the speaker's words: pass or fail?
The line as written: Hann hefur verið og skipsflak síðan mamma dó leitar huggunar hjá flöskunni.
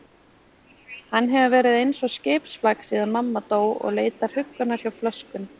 fail